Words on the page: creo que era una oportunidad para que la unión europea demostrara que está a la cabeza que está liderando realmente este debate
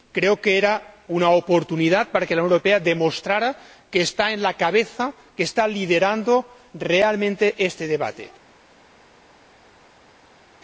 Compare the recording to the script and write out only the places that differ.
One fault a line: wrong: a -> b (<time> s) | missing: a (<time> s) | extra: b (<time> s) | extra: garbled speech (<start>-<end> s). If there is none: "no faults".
no faults